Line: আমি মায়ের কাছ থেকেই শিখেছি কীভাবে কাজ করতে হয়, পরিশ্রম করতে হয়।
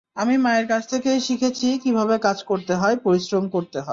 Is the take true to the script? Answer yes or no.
yes